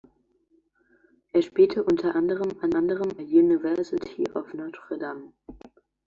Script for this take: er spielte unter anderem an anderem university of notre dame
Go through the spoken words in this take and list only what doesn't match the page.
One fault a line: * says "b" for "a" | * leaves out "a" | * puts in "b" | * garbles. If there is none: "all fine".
all fine